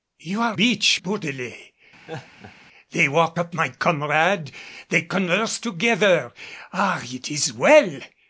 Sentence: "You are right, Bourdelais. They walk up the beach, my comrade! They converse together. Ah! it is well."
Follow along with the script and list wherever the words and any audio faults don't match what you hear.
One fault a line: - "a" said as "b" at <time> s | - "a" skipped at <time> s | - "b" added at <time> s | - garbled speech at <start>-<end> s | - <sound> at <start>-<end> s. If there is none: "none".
- "right" said as "beach" at 0.5 s
- laugh at 2.1-2.5 s
- "the beach" skipped at 3.5 s